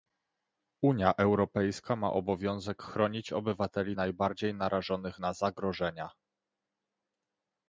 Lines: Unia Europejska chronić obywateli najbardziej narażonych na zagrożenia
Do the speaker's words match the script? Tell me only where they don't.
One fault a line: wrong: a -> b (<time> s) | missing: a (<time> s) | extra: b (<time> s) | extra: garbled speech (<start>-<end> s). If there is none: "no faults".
extra: ma obowiązek (1.9 s)